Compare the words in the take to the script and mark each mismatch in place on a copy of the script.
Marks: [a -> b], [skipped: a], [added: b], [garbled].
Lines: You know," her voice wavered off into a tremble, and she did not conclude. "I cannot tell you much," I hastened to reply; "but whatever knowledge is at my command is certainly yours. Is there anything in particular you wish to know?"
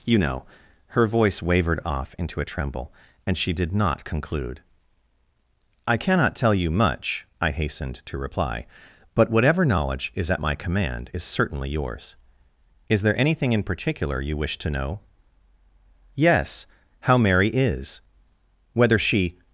You know," her voice wavered off into a tremble, and she did not conclude. "I cannot tell you much," I hastened to reply; "but whatever knowledge is at my command is certainly yours. Is there anything in particular you wish to know?" [added: Yes how Mary is whether she]